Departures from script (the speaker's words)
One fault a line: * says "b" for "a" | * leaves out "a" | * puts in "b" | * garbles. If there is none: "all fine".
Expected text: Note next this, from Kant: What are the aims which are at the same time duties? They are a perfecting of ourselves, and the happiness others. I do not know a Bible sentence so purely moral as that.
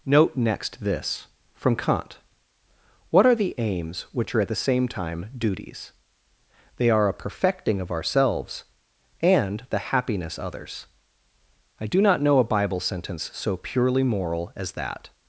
all fine